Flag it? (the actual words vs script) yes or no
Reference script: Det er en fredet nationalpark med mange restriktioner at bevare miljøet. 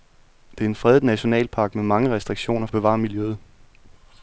no